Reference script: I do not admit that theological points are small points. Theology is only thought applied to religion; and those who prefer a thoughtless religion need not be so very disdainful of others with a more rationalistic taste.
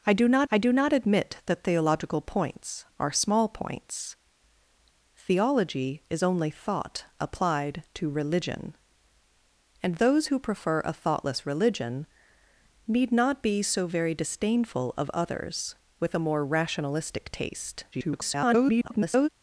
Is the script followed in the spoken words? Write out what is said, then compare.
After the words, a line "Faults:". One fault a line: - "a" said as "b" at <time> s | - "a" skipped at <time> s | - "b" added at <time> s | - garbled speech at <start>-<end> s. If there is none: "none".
I do not I do not admit that theological points are small points. Theology is only thought applied to religion; and those who prefer a thoughtless religion need not be so very disdainful of others with a more rationalistic taste. [garbled]
Faults:
- "I do not" added at 0.5 s
- garbled speech at 17.9-19.3 s